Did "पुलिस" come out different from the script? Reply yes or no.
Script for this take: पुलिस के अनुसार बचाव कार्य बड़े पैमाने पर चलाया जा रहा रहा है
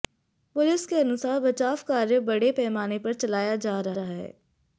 no